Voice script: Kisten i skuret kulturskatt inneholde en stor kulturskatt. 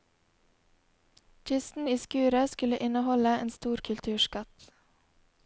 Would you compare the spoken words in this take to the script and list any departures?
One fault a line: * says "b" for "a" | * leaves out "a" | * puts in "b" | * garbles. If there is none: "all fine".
* says "skulle" for "kulturskatt"